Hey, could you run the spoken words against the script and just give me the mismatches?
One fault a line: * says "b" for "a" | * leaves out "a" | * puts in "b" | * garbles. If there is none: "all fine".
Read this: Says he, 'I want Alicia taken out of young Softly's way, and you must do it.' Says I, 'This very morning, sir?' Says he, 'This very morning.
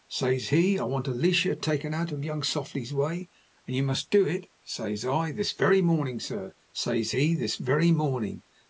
all fine